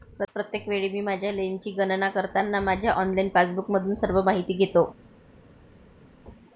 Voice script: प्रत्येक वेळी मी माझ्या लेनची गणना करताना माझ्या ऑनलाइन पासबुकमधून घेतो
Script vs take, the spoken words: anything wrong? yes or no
yes